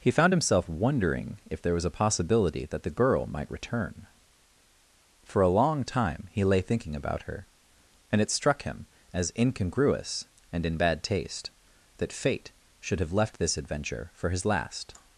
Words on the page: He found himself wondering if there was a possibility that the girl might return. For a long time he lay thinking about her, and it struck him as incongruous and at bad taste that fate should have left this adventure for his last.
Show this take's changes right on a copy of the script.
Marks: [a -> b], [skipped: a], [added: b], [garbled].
He found himself wondering if there was a possibility that the girl might return. For a long time he lay thinking about her, and it struck him as incongruous and [at -> in] bad taste that fate should have left this adventure for his last.